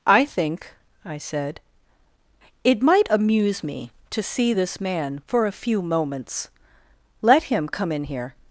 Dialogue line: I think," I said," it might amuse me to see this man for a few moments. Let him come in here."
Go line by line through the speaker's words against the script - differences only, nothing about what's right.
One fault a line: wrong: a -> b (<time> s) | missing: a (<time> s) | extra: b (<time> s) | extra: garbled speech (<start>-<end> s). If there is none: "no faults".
no faults